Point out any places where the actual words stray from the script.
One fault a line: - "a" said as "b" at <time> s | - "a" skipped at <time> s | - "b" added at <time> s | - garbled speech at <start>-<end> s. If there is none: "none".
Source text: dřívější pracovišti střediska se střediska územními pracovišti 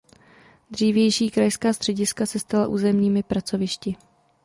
- "pracovišti" said as "krajská" at 1.3 s
- "střediska" said as "stala" at 2.4 s